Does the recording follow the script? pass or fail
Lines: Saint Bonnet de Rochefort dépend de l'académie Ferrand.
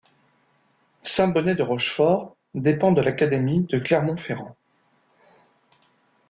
fail